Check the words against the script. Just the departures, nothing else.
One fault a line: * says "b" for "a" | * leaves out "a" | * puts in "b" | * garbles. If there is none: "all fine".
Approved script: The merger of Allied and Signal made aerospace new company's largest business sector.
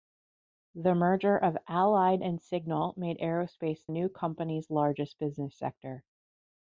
all fine